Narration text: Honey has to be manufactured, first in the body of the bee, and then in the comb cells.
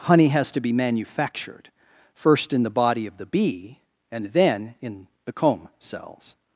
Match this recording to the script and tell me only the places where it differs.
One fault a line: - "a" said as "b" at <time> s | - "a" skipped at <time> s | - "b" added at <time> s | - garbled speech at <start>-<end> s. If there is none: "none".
none